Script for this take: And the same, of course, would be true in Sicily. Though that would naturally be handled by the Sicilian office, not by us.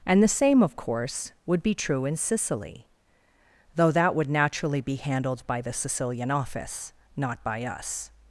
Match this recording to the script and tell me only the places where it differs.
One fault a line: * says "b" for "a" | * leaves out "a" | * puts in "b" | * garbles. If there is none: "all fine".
all fine